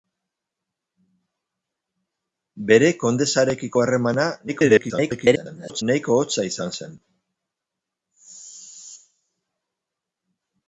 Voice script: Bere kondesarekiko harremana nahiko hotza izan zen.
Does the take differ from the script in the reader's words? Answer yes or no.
yes